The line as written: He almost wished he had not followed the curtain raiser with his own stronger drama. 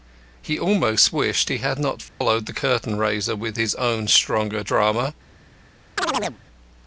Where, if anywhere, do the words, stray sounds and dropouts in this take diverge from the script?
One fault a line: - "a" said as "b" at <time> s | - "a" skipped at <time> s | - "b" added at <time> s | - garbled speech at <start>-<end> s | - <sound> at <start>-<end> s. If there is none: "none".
- dropout at 2.1-2.2 s
- chirp at 6.0-6.4 s